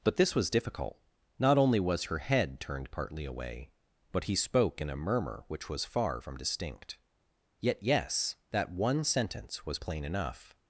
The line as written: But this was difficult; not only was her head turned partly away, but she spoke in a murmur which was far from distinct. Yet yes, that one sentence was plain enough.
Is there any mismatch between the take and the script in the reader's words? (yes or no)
yes